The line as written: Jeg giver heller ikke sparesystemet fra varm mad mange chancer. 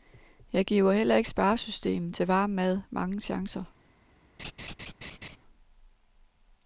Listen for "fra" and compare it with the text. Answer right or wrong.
wrong